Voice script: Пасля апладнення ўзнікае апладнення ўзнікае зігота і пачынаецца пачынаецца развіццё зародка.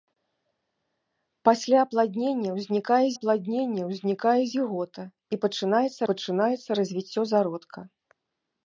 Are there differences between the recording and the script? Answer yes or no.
no